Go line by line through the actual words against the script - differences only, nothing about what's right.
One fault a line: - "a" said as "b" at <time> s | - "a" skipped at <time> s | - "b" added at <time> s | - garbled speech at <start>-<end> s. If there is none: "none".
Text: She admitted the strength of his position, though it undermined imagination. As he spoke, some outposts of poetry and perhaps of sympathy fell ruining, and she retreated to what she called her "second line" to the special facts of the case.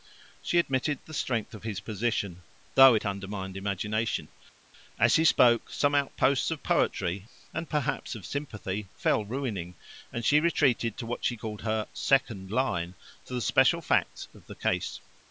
none